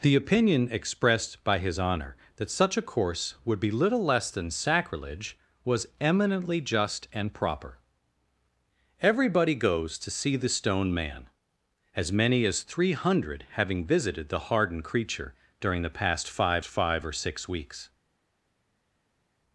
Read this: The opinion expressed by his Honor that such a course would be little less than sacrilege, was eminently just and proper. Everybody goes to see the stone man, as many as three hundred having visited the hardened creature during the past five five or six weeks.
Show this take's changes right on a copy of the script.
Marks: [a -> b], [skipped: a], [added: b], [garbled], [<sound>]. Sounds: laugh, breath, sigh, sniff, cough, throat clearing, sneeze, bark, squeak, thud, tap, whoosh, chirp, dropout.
The opinion expressed by his Honor that such a course would be little less than sacrilege, was eminently just and proper. Everybody goes to see the stone man, as many as three hundred having visited the hardened creature during the past five five or six weeks.